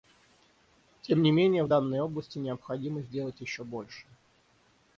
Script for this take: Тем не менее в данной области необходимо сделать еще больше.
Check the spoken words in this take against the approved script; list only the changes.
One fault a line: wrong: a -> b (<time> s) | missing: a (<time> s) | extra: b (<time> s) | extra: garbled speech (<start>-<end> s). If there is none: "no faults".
no faults